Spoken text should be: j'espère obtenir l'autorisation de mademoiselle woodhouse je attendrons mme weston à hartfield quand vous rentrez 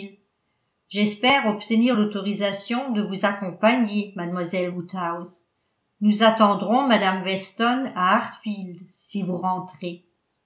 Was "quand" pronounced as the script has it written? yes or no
no